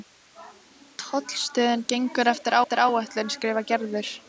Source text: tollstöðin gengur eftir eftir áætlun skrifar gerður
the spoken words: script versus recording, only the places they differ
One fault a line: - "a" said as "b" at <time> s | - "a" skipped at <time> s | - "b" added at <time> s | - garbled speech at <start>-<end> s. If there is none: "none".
none